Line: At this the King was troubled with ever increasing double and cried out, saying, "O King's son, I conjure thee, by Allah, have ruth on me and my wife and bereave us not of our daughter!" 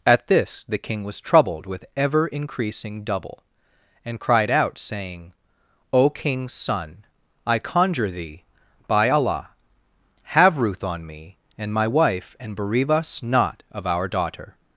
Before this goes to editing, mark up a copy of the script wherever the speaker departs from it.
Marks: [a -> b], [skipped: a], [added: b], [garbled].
At this the King was troubled with ever increasing double and cried out, saying, "O King's son, I conjure thee, by Allah, have ruth on me and my wife and bereave us not of our daughter!"